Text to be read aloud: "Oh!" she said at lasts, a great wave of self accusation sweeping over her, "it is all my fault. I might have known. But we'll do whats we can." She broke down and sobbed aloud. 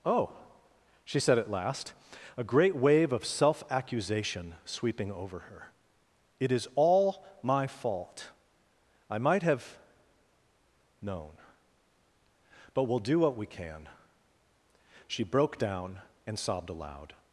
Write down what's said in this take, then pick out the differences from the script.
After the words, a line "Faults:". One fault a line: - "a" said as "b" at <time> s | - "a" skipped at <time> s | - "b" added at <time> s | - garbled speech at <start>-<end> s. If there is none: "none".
"Oh!" she said at last, a great wave of self accusation sweeping over her, "it is all my fault. I might have known. But we'll do what we can." She broke down and sobbed aloud.
Faults:
- "lasts" said as "last" at 1.5 s
- "whats" said as "what" at 13.2 s